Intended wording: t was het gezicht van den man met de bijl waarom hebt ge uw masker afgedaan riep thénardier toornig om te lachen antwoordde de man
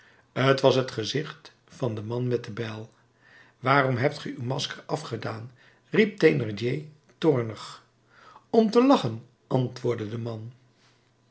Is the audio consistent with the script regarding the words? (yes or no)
yes